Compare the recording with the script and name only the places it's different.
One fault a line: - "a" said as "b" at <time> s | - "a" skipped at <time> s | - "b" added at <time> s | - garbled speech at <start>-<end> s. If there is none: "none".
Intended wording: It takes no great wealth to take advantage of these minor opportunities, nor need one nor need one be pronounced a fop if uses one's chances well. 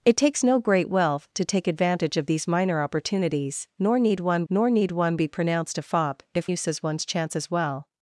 none